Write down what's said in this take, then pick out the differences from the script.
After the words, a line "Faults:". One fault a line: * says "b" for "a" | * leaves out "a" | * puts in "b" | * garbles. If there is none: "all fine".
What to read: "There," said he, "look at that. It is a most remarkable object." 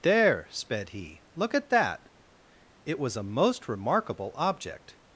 "There," sped he, "look at that. It was a most remarkable object."
Faults:
* says "sped" for "said"
* says "was" for "is"